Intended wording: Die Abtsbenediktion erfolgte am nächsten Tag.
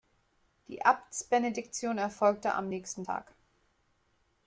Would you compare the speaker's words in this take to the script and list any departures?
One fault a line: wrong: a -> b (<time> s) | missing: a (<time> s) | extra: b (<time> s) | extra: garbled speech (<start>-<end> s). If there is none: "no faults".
no faults